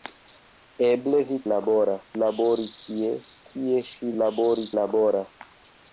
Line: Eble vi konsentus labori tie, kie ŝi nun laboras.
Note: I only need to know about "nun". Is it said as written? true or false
false